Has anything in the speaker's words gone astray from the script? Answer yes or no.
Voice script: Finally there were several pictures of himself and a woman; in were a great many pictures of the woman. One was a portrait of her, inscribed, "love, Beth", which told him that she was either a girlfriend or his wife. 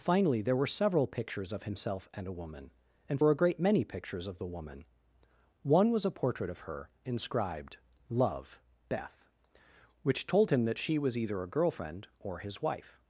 no